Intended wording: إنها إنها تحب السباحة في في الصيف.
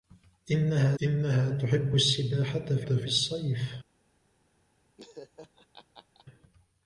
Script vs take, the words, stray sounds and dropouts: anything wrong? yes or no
yes